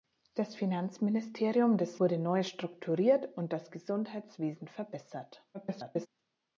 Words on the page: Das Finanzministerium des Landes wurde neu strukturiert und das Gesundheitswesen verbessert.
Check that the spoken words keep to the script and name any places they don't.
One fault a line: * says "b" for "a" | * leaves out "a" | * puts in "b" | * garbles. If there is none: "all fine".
* leaves out "Landes"
* garbles